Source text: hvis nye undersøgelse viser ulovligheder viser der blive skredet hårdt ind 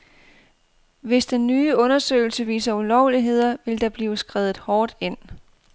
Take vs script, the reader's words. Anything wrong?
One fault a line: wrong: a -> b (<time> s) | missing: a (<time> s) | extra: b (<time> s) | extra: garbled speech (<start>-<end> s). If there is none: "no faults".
extra: den (1.2 s)
wrong: viser -> vil (3.6 s)